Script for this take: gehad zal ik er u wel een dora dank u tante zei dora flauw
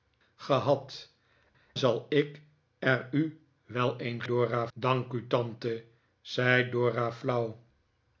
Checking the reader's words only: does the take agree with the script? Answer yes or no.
yes